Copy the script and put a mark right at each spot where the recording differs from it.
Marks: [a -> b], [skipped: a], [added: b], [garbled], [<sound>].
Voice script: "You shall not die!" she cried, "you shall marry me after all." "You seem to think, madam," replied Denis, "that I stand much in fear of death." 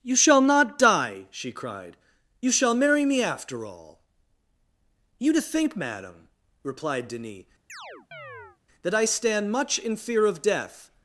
"You shall not die!" she cried, "you shall marry me after all." "You [skipped: seem] to think, madam," replied Denis, [chirp] "that I stand much in fear of death."